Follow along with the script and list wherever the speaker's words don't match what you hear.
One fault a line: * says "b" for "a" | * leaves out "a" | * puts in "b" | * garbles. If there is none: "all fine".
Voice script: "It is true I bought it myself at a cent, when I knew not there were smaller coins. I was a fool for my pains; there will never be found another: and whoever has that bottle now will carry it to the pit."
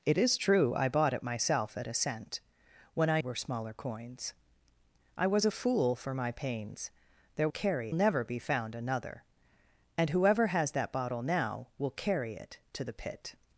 * leaves out "knew not there"
* says "carry" for "will"